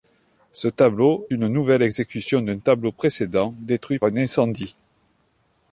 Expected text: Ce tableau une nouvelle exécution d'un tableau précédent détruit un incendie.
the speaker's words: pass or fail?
pass